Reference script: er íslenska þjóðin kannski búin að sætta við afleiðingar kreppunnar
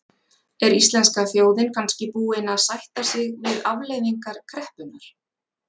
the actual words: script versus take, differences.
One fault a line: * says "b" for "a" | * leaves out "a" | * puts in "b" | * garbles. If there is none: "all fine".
* puts in "sig"